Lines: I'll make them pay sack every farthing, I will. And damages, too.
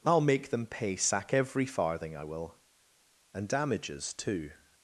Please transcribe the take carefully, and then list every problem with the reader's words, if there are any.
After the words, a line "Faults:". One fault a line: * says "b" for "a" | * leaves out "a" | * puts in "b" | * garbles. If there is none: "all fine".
I'll make them pay sack every farthing, I will. And damages, too.
Faults:
all fine